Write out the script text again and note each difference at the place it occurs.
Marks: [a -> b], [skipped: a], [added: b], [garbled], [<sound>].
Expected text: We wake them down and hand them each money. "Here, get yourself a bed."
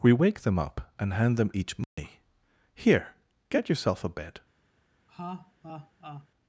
We wake them [down -> up] and hand them each money. [dropout] "Here, get yourself a bed." [laugh]